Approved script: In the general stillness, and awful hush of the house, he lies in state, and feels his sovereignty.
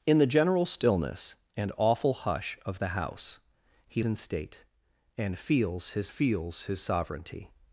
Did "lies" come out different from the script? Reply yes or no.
yes